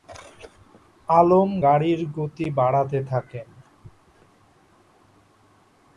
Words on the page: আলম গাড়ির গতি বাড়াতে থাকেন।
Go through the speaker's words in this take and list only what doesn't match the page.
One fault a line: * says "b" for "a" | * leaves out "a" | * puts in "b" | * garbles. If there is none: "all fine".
all fine